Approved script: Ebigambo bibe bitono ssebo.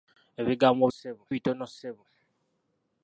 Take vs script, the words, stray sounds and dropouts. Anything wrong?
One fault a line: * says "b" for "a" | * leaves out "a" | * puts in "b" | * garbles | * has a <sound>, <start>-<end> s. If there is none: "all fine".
* says "ssebo" for "bibe"